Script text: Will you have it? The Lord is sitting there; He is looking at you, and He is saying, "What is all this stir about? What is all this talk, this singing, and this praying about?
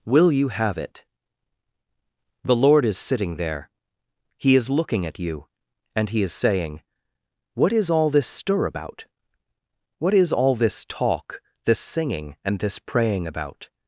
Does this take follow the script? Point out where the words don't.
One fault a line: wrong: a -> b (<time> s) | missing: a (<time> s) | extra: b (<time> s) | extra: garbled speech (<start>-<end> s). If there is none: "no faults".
no faults